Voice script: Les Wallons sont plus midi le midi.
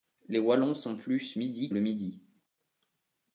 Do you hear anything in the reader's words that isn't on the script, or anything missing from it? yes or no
no